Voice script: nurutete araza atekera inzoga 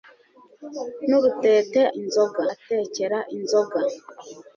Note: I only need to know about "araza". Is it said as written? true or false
false